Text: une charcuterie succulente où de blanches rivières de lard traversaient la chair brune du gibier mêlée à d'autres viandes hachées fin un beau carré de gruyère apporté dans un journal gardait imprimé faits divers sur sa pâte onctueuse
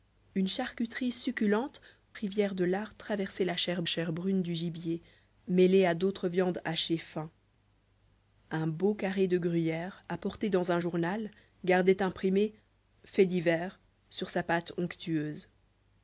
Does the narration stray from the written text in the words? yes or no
yes